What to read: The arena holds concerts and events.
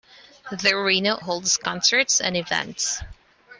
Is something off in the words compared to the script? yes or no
no